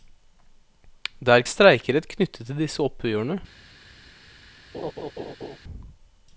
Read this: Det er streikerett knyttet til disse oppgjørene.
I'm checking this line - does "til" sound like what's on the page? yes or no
yes